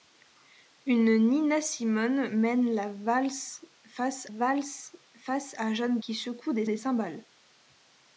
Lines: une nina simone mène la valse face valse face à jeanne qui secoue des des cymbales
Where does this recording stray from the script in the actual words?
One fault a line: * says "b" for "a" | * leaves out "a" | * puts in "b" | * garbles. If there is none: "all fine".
all fine